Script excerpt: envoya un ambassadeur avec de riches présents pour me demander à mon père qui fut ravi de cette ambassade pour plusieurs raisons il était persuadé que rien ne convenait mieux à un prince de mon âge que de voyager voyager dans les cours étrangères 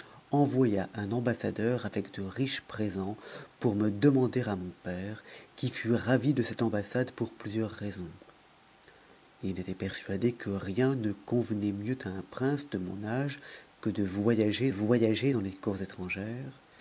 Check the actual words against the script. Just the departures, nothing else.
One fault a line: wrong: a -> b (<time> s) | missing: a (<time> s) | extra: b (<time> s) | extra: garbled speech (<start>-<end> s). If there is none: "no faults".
no faults